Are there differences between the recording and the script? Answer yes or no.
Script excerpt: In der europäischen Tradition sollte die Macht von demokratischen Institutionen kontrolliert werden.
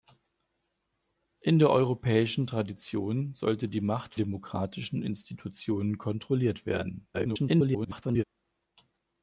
yes